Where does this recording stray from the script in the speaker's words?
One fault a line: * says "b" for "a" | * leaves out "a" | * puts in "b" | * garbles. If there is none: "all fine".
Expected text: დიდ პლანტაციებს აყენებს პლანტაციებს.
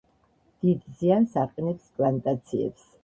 * says "ზიანს" for "პლანტაციებს"